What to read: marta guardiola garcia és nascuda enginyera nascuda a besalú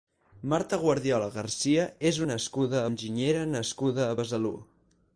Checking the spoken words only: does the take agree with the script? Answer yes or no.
yes